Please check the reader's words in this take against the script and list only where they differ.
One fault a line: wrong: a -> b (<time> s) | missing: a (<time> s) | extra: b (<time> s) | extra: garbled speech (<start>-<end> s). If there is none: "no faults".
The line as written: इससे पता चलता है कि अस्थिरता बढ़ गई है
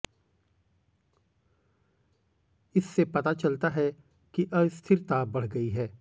no faults